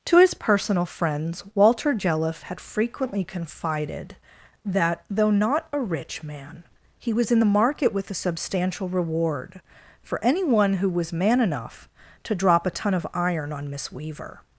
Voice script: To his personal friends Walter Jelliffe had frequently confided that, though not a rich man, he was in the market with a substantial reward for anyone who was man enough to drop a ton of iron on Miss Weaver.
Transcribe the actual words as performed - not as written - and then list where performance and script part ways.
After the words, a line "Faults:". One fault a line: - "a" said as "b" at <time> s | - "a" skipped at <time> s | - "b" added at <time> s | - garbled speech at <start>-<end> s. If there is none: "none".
To his personal friends Walter Jelliffe had frequently confided that, though not a rich man, he was in the market with a substantial reward for anyone who was man enough to drop a ton of iron on Miss Weaver.
Faults:
none